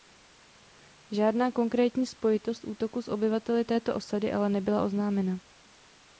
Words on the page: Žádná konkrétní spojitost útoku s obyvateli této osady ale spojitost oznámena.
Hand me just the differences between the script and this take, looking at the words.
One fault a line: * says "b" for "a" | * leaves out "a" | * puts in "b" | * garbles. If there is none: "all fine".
* says "nebyla" for "spojitost"